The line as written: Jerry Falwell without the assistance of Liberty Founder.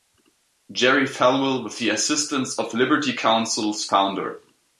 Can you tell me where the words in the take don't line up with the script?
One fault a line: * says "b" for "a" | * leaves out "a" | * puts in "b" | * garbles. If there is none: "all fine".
* says "with" for "without"
* puts in "Counsel's"